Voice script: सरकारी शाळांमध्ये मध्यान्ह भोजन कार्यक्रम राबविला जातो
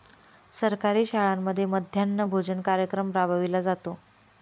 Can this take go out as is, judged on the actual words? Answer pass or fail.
pass